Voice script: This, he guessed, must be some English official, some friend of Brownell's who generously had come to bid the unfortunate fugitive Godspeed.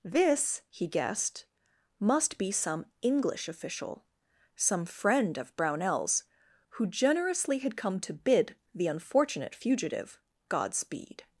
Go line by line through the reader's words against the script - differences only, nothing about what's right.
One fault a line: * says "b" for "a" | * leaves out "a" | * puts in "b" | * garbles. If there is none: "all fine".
all fine